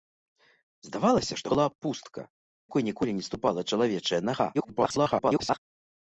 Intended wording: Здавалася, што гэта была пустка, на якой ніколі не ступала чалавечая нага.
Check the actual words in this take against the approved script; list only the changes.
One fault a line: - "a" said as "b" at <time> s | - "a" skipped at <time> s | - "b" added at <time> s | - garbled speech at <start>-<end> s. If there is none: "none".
- "гэта" skipped at 1.5 s
- "на" skipped at 2.2 s
- garbled speech at 4.5-5.6 s